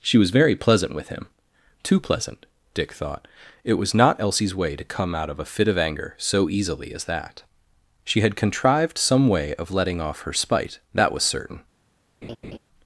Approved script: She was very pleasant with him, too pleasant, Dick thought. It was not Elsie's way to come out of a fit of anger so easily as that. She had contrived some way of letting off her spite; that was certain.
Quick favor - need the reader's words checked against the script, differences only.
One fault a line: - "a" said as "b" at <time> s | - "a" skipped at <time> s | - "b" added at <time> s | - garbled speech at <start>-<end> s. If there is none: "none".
none